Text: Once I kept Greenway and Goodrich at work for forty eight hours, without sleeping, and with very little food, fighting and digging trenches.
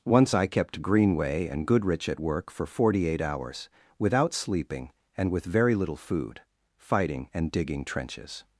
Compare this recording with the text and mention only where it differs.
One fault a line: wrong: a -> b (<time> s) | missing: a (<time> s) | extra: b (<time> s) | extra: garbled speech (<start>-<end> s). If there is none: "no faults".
no faults